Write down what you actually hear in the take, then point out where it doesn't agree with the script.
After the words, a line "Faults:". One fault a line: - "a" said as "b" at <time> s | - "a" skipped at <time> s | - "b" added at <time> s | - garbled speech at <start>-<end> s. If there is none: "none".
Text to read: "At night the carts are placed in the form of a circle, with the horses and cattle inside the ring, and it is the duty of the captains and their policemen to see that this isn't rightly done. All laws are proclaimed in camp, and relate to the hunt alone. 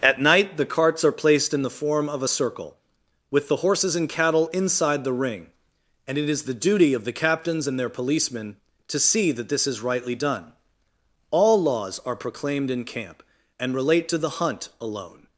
"At night the carts are placed in the form of a circle, with the horses and cattle inside the ring, and it is the duty of the captains and their policemen to see that this is rightly done. All laws are proclaimed in camp, and relate to the hunt alone.
Faults:
- "isn't" said as "is" at 9.7 s